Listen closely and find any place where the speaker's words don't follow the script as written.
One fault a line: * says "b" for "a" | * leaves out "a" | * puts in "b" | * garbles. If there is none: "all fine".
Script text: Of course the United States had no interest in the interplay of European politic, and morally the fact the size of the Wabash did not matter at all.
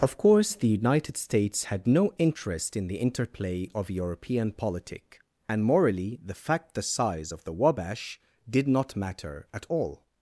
all fine